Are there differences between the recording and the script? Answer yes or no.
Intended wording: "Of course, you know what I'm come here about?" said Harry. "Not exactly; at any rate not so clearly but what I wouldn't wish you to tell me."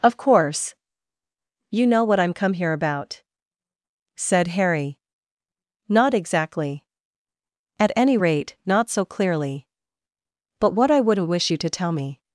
no